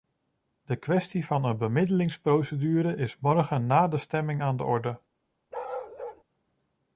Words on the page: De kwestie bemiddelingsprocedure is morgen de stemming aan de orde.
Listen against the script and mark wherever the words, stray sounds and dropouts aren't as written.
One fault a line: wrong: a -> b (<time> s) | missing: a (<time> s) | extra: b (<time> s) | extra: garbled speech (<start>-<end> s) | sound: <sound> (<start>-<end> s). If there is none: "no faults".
extra: van een (1.2 s)
extra: na (3.6 s)
sound: bark (5.5-6.2 s)